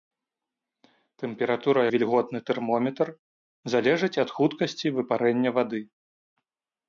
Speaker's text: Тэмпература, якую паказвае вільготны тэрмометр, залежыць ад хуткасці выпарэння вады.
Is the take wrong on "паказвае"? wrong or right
wrong